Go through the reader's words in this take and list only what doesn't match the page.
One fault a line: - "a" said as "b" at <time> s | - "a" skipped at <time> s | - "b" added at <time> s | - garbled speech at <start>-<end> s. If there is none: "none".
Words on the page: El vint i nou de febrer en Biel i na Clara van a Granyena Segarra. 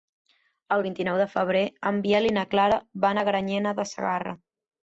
- "de" added at 3.8 s